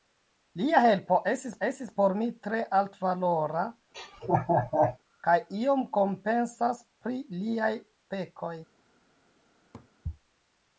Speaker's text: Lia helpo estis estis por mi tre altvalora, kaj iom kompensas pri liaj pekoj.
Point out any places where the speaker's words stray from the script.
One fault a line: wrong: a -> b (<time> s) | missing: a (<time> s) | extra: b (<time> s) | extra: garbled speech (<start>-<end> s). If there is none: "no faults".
no faults